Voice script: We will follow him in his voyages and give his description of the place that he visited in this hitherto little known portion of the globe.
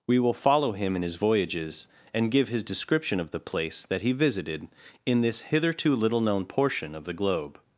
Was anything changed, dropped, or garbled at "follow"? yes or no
no